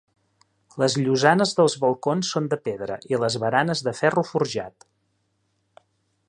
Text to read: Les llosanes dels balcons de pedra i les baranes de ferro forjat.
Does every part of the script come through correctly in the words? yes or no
no